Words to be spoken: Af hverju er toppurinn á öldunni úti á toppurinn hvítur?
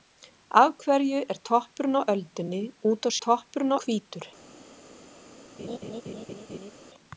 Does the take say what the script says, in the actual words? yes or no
yes